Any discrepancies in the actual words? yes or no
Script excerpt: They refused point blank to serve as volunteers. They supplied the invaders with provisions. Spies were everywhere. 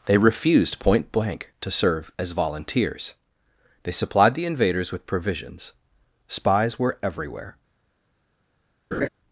no